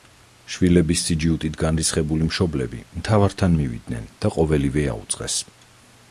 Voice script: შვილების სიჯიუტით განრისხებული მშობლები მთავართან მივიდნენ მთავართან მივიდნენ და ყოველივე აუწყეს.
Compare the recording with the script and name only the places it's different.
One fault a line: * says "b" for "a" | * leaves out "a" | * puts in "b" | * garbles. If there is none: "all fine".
* leaves out "მთავართან მივიდნენ"